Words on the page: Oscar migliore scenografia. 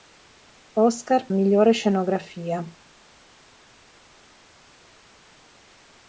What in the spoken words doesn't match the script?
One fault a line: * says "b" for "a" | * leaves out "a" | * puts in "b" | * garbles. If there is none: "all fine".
all fine